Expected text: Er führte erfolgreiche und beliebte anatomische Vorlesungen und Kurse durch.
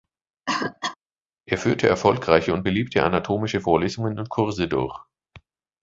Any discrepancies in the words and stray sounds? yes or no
yes